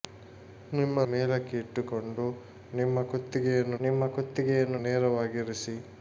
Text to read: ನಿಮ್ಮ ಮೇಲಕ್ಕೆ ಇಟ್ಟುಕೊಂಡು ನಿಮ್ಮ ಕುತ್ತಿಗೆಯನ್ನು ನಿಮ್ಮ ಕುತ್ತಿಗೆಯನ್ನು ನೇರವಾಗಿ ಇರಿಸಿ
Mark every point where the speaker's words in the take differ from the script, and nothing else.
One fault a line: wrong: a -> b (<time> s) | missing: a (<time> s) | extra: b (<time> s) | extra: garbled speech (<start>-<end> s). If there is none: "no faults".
no faults